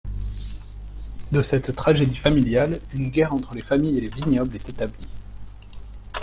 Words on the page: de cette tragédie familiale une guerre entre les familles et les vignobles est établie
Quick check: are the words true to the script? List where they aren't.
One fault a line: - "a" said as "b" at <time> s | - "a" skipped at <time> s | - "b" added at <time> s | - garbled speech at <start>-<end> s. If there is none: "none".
none